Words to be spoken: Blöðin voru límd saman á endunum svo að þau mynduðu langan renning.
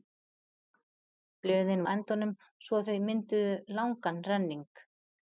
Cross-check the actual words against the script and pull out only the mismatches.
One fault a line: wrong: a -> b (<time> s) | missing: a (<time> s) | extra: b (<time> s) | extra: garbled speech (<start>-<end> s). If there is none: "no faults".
missing: voru límd saman (1.8 s)